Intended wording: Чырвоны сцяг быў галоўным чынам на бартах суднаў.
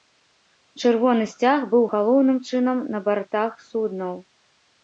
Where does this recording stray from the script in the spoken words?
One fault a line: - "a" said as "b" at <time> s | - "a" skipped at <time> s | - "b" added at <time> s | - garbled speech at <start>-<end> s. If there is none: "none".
none